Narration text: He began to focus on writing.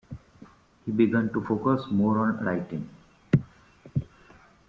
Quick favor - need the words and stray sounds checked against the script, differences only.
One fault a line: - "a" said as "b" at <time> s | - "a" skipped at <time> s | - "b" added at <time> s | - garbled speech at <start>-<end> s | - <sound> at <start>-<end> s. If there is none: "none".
- "more" added at 1.9 s